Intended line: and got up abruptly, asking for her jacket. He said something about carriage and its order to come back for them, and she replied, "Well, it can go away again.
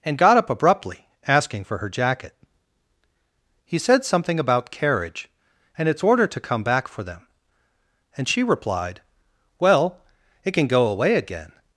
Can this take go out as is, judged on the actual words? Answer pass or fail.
pass